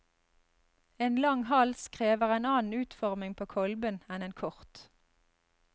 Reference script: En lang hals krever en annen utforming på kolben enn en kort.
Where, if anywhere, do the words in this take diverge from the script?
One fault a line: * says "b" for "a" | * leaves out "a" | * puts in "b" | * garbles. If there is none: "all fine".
all fine